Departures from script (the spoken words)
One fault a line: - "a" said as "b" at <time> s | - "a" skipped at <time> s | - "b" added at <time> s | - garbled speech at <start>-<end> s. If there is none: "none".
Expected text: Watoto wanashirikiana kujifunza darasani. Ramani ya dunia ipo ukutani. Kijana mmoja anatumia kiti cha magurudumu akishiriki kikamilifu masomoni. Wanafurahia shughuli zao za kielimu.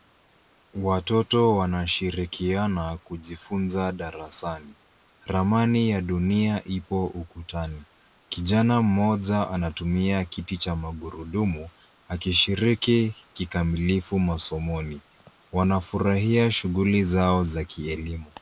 none